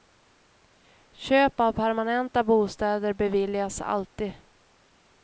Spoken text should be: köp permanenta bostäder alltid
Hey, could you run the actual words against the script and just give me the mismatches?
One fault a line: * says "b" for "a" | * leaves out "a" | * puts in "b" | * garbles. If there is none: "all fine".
* puts in "av"
* puts in "beviljas"